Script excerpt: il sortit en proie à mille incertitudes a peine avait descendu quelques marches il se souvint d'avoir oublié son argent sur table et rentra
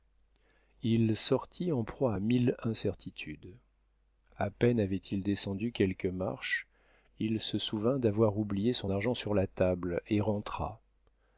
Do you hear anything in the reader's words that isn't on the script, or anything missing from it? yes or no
yes